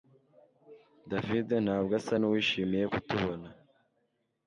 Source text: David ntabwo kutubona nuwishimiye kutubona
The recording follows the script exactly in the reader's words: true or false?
false